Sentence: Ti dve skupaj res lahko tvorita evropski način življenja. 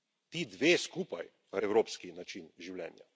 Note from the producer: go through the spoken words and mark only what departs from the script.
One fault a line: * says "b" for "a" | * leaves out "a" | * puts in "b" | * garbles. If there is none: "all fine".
* leaves out "res lahko tvorita"